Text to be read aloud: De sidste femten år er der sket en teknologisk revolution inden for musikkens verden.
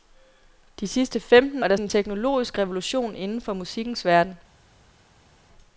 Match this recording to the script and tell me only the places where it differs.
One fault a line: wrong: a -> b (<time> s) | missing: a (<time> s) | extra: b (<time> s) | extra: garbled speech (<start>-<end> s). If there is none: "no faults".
missing: år (1.6 s)
missing: sket (1.8 s)